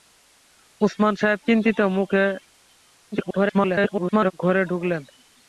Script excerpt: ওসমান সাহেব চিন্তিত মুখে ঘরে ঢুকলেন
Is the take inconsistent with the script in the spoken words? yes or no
yes